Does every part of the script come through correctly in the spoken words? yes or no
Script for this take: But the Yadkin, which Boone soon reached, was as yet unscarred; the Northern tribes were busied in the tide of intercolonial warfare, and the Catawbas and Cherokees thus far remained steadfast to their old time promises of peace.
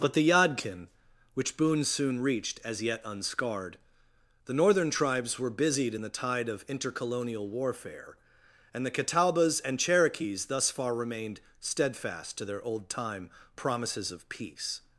no